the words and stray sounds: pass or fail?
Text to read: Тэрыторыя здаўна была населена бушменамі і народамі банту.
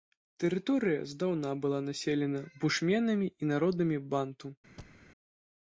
fail